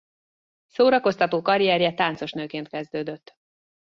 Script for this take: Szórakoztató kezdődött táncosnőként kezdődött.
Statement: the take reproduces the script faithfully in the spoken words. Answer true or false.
false